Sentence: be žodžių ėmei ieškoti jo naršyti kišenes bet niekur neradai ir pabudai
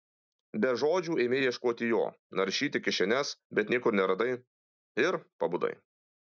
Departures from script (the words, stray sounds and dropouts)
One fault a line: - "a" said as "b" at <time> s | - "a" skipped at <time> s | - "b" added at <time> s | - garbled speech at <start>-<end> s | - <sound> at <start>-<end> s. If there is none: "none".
none